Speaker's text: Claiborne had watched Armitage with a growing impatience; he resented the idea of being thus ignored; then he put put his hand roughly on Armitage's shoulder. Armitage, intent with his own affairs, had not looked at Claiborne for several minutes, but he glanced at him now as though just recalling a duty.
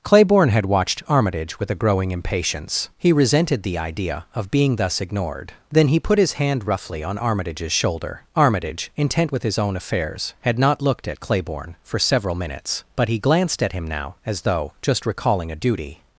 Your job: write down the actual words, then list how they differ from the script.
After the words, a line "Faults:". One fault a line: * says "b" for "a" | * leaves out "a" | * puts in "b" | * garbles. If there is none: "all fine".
Claiborne had watched Armitage with a growing impatience; he resented the idea of being thus ignored; then he put his hand roughly on Armitage's shoulder. Armitage, intent with his own affairs, had not looked at Claiborne for several minutes, but he glanced at him now as though just recalling a duty.
Faults:
* leaves out "put"